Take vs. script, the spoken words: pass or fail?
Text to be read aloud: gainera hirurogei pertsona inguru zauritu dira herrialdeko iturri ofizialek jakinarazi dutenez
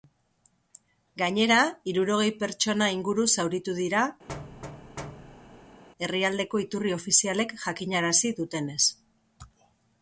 pass